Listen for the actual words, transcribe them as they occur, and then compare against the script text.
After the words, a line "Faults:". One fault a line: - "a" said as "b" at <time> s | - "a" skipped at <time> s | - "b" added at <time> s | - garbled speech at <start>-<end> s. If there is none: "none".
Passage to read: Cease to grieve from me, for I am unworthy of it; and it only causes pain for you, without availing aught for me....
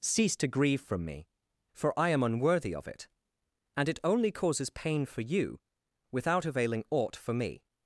Cease to grieve from me, for I am unworthy of it; and it only causes pain for you, without availing aught for me....
Faults:
none